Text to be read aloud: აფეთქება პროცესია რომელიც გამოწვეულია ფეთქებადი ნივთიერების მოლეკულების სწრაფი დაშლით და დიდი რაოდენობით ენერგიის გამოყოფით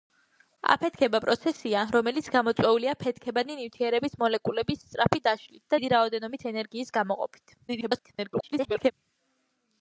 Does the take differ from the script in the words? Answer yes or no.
yes